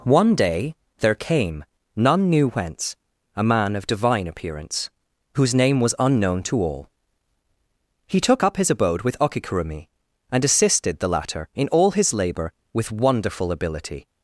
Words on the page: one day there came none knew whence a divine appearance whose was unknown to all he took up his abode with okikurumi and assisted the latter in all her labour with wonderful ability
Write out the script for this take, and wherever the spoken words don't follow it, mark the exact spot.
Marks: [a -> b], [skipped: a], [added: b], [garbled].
one day there came none knew whence a [added: man of] divine appearance whose [added: name] was unknown to all he took up his abode with okikurumi and assisted the latter in all [her -> his] labour with wonderful ability